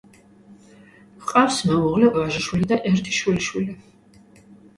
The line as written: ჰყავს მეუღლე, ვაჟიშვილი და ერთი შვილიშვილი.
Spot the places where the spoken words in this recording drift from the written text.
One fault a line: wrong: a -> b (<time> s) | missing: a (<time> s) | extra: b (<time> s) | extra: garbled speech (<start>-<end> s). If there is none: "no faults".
no faults